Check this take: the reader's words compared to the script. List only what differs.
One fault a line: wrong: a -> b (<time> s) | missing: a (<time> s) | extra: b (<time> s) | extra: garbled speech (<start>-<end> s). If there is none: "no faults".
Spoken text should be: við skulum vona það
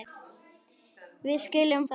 missing: vona (1.8 s)